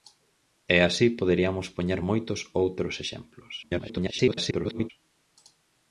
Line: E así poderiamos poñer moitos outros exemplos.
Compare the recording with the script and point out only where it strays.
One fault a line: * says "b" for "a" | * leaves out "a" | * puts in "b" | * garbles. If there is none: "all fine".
* garbles